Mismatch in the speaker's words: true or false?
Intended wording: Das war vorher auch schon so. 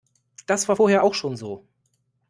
false